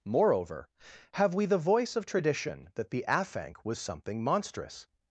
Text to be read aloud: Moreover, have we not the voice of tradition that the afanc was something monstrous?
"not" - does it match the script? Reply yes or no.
no